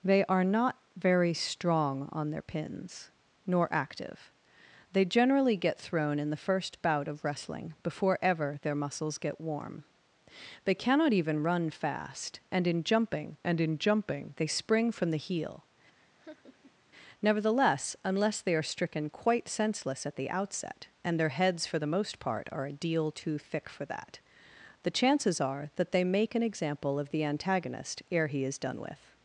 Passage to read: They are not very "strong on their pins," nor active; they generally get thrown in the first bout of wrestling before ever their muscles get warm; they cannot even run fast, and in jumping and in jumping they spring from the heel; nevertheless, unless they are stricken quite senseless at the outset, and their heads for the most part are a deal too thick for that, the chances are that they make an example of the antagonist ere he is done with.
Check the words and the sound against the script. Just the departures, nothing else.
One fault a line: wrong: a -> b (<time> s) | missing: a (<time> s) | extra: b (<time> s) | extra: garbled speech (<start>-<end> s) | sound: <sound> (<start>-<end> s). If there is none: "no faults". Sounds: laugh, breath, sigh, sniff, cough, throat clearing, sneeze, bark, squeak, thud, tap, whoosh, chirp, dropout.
sound: laugh (15.9-16.8 s)